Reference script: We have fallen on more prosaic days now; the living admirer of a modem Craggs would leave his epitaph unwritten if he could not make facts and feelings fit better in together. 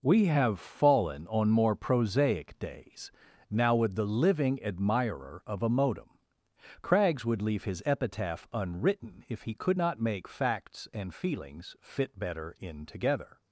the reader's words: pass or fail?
fail